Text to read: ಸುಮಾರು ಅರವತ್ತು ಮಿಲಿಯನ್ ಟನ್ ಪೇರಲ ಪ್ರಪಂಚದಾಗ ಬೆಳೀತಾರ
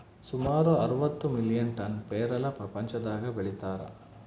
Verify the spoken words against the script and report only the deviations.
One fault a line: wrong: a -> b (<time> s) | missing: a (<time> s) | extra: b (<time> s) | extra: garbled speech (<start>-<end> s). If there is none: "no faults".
no faults